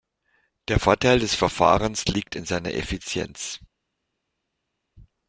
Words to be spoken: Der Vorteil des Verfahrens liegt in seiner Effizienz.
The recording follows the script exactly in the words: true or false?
true